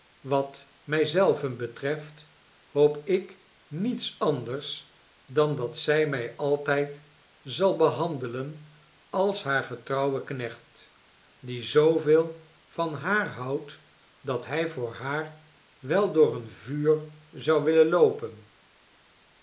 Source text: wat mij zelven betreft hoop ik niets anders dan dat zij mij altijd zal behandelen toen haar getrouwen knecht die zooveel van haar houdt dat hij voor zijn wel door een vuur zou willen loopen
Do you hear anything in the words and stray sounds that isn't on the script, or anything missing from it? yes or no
yes